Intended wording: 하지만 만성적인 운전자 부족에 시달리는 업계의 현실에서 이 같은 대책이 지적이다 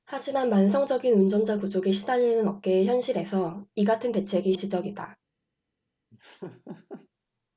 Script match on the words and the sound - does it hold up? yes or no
no